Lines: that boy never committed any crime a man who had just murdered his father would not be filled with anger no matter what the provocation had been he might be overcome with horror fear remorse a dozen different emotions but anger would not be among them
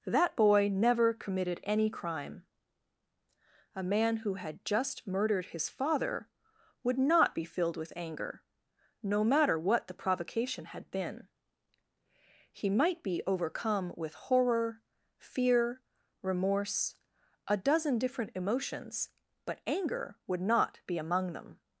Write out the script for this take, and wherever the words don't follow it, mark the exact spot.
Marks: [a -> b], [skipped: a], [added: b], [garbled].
that boy never committed any crime a man who had just murdered his father would not be filled with anger no matter what the provocation had been he might be overcome with horror fear remorse a dozen different emotions but anger would not be among them